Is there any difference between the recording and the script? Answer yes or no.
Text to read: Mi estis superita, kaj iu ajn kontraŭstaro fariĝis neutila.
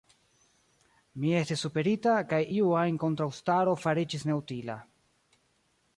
no